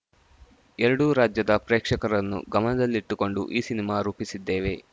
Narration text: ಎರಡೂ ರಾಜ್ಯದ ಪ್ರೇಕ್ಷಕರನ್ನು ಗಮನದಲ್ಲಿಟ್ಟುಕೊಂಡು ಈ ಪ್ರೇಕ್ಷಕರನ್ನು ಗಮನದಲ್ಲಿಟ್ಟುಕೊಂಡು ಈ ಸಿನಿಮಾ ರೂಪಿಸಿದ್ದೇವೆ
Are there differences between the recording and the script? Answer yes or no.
yes